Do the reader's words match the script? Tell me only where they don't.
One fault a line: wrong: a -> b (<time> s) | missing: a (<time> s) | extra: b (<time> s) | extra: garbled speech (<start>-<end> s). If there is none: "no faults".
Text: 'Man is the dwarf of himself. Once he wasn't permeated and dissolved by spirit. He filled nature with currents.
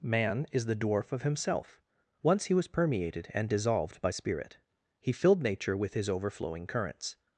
wrong: wasn't -> was (2.5 s)
extra: his overflowing (5.9 s)